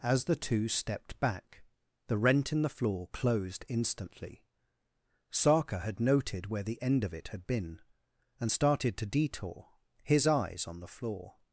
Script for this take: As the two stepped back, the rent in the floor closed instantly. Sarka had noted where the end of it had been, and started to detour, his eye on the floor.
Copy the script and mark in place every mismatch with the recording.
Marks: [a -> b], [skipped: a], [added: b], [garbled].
As the two stepped back, the rent in the floor closed instantly. Sarka had noted where the end of it had been, and started to detour, his [eye -> eyes] on the floor.